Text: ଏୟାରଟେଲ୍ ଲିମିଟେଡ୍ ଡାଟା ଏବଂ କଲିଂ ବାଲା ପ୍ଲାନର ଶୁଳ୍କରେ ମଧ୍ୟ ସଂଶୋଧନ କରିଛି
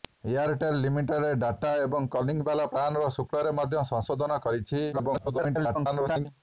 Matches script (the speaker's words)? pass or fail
fail